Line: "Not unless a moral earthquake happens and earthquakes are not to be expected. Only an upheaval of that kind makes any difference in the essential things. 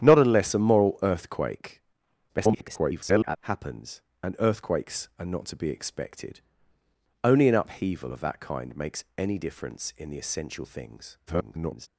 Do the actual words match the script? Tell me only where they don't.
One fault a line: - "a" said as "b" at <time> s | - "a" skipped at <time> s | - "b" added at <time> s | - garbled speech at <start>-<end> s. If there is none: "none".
- garbled speech at 2.3-3.4 s
- garbled speech at 11.3-11.9 s